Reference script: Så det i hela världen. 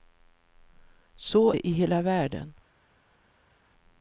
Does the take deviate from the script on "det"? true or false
false